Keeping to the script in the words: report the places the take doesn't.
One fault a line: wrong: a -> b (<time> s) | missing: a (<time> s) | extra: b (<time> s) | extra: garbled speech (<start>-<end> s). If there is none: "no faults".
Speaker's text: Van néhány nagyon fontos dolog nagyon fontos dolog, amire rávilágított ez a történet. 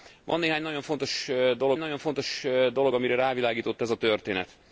no faults